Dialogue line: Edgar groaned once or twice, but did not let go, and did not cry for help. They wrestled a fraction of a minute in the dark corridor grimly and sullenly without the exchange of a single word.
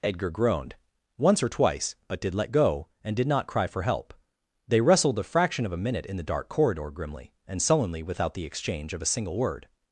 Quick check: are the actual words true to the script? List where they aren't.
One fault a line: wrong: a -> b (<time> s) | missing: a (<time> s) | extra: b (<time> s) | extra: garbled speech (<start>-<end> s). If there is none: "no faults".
missing: not (2.3 s)